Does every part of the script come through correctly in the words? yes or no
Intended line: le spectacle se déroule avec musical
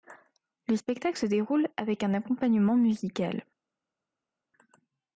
no